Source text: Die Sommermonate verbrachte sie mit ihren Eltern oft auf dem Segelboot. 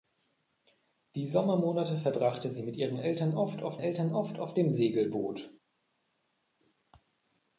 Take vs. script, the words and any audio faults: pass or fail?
fail